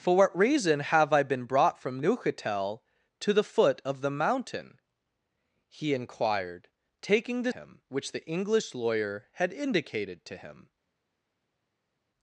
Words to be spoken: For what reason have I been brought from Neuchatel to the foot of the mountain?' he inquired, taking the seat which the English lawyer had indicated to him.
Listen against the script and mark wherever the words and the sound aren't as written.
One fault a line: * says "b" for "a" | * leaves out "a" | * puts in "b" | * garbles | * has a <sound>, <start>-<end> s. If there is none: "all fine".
* says "him" for "seat"